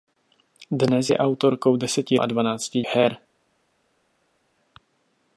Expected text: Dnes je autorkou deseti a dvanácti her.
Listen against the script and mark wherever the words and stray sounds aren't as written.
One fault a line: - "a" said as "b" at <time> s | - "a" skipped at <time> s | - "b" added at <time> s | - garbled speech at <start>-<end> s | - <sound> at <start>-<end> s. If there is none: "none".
none